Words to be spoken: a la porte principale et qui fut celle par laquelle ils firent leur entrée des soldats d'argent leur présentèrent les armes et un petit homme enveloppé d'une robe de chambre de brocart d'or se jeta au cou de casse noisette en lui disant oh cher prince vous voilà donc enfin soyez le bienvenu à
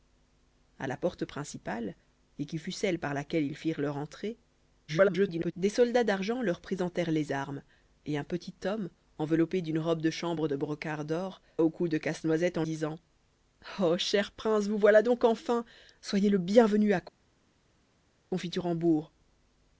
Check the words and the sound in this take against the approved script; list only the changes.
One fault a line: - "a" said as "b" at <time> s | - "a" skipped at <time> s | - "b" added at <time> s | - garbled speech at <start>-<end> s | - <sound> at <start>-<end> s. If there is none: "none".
- garbled speech at 4.9-5.5 s
- "se jeta" skipped at 11.4 s
- "lui" skipped at 12.6 s